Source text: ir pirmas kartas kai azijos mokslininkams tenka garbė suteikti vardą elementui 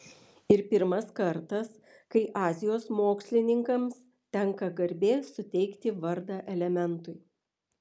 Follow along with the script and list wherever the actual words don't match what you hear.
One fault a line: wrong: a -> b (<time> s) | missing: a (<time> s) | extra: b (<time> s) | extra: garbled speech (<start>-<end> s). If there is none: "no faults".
no faults